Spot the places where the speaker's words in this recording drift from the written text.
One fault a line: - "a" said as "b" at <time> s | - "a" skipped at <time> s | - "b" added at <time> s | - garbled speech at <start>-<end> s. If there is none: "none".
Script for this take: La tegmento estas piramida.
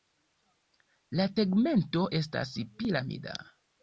none